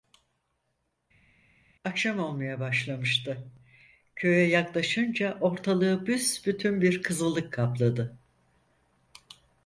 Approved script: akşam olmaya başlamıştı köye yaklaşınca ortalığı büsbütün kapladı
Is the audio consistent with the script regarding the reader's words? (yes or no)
no